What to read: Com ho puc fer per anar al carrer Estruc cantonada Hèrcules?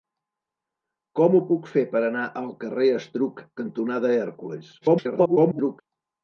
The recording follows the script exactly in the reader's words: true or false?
false